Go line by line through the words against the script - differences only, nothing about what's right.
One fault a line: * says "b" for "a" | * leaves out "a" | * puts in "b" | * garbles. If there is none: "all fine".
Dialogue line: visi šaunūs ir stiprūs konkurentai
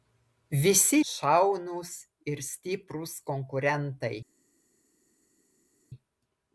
all fine